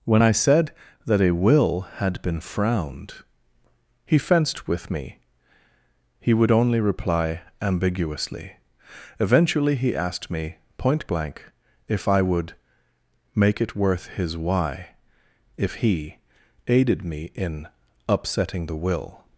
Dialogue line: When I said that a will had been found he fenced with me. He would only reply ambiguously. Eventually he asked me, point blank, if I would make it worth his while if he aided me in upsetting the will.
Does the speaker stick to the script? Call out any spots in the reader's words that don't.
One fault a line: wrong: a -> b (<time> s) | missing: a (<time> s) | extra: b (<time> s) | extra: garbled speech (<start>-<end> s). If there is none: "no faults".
wrong: found -> frowned (2.4 s)
wrong: while -> why (14.3 s)